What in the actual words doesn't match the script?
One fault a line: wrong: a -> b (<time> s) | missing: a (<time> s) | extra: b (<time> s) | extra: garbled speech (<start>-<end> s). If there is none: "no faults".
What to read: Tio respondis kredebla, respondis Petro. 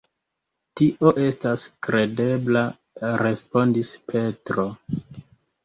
wrong: respondis -> estas (1.2 s)